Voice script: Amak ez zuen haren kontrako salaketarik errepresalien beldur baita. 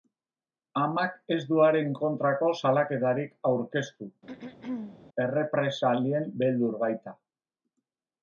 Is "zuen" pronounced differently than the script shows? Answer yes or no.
yes